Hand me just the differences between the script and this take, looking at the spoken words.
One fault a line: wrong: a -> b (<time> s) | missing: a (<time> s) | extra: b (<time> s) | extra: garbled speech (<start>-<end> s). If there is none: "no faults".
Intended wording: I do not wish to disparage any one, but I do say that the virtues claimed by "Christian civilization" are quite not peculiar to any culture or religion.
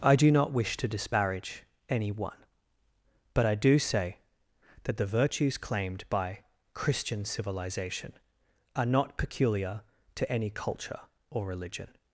missing: quite (8.9 s)